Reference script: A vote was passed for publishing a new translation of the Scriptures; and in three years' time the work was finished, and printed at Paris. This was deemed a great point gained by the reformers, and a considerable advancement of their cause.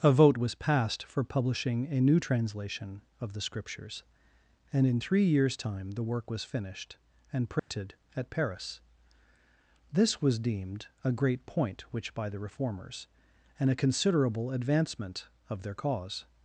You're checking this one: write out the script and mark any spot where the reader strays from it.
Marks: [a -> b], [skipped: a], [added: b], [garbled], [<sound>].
A vote was passed for publishing a new translation of the Scriptures; and in three years' time the work was finished, and printed [dropout] at Paris. This was deemed a great point [gained -> which] by the reformers, and a considerable advancement of their cause.